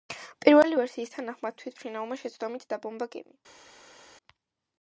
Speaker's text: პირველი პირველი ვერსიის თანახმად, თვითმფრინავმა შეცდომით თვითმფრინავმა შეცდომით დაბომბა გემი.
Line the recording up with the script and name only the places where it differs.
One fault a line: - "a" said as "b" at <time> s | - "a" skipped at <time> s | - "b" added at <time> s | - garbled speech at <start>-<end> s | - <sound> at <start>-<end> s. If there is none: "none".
- "პირველი" skipped at 0.8 s
- "თვითმფრინავმა შეცდომით" skipped at 2.7 s